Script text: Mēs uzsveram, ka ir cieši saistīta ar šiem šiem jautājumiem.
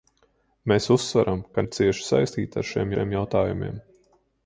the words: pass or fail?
pass